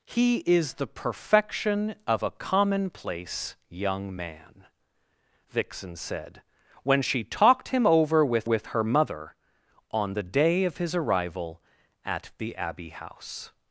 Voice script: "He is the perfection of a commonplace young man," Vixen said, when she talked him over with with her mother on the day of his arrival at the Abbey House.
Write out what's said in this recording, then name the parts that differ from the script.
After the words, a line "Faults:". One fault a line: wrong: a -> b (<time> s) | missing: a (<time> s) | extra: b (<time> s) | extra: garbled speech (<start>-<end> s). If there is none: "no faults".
"He is the perfection of a commonplace young man," Vixen said, when she talked him over with with her mother on the day of his arrival at the Abbey House.
Faults:
no faults